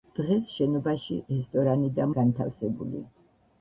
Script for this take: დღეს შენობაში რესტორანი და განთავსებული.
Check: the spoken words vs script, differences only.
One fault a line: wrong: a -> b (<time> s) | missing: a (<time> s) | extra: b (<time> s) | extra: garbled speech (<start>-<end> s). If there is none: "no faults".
no faults